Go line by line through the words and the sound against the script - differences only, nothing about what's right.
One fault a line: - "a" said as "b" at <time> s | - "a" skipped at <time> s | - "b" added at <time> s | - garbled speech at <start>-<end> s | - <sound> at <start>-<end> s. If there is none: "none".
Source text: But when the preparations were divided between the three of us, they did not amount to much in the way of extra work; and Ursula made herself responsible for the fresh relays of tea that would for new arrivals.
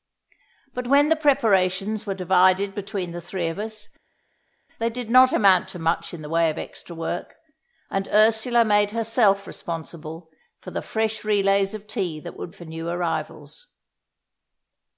none